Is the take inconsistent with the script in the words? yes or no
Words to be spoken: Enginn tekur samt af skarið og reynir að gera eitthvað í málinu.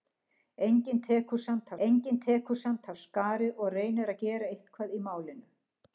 yes